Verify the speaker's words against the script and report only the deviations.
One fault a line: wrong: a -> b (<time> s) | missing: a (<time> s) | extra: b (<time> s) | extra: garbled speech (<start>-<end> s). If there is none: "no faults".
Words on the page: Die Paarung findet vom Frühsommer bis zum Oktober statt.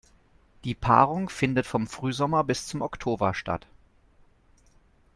no faults